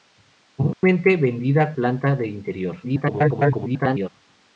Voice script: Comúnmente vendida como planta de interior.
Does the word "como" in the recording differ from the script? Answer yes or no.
yes